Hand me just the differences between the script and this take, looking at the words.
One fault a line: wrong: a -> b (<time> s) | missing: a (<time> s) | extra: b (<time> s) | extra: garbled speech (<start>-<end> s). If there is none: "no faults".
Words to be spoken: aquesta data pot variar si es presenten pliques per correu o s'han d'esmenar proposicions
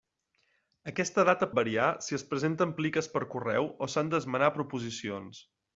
missing: pot (1.5 s)